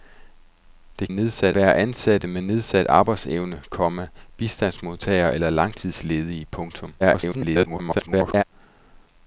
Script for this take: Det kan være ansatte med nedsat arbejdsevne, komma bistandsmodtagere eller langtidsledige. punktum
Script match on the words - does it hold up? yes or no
no